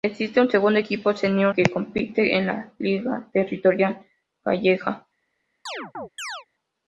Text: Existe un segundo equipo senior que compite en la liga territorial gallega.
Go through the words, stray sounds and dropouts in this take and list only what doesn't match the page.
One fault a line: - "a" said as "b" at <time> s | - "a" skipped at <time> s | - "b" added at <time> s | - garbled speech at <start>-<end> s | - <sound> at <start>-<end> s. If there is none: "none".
- chirp at 5.7-6.5 s